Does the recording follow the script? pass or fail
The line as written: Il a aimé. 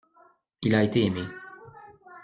fail